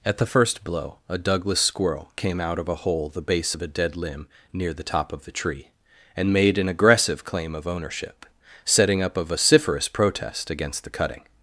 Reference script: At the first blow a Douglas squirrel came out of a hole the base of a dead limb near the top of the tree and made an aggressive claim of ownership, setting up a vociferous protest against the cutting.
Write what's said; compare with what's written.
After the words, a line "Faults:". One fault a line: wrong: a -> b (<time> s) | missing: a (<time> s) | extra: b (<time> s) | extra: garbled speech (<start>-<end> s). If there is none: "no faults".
At the first blow a Douglas squirrel came out of a hole the base of a dead limb near the top of the tree and made an aggressive claim of ownership, setting up a vociferous protest against the cutting.
Faults:
no faults